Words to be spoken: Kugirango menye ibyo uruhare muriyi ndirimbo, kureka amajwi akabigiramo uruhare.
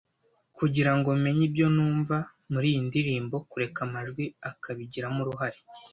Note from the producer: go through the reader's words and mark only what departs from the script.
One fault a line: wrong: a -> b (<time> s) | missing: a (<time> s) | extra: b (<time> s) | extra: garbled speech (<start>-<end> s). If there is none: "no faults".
wrong: uruhare -> numva (1.8 s)